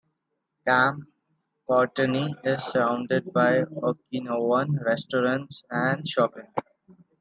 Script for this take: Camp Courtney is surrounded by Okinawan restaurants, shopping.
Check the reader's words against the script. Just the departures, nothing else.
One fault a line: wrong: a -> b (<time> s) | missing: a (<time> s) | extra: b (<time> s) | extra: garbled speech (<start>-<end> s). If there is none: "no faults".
extra: and (5.7 s)